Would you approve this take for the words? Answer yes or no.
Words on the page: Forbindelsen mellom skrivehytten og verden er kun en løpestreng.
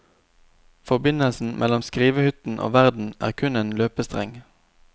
yes